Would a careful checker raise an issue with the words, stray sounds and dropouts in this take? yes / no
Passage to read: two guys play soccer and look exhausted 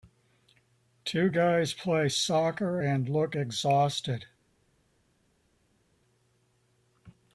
no